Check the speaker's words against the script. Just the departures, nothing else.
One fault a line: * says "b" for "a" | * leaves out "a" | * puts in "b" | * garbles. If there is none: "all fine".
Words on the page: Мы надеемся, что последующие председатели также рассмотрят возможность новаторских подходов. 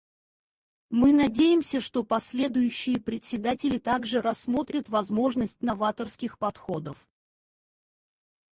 all fine